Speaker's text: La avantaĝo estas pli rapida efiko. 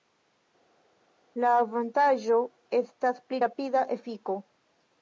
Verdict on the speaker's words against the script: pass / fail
pass